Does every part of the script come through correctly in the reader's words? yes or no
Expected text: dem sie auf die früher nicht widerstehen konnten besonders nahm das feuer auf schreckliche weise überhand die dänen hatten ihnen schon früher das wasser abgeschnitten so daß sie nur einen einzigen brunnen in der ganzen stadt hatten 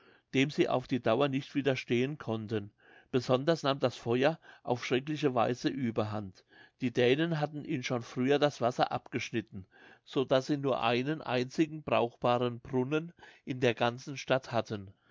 no